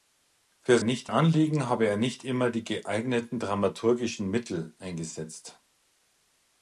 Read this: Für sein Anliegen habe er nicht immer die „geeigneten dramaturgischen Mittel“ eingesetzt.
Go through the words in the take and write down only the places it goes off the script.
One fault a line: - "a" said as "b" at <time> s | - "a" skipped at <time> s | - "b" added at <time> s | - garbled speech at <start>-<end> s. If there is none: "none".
- "sein" said as "nicht" at 0.8 s